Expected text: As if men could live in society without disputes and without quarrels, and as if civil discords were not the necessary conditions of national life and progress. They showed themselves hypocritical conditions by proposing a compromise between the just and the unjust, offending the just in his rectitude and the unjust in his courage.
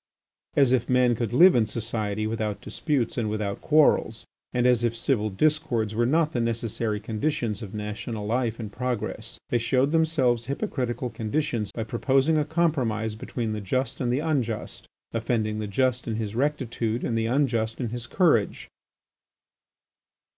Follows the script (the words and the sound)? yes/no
yes